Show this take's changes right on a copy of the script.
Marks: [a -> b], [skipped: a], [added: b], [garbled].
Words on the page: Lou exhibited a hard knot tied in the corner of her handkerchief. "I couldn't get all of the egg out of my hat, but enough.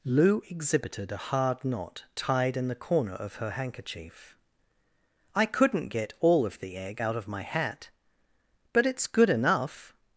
Lou exhibited a hard knot tied in the corner of her handkerchief. "I couldn't get all of the egg out of my hat, but [added: it's good] enough.